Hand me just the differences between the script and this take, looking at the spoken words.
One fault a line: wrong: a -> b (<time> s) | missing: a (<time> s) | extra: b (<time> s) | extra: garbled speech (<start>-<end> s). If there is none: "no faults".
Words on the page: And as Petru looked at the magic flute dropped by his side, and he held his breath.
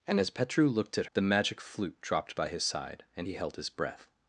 no faults